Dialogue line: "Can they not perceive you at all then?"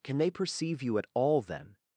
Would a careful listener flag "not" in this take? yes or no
yes